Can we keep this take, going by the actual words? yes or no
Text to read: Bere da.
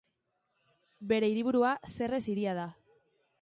no